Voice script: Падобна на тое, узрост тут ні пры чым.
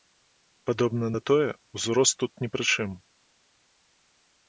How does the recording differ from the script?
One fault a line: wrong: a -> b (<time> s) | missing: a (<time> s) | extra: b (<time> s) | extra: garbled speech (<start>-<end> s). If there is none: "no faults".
no faults